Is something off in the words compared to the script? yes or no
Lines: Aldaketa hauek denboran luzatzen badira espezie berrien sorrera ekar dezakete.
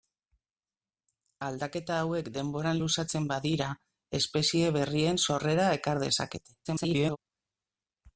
yes